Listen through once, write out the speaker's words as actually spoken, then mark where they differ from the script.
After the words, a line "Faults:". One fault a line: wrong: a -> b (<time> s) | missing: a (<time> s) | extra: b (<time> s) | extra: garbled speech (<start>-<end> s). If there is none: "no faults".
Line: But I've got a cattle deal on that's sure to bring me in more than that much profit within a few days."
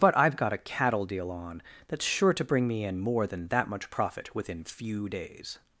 But I've got a cattle deal on that's sure to bring me in more than that much profit within few days."
Faults:
missing: a (4.6 s)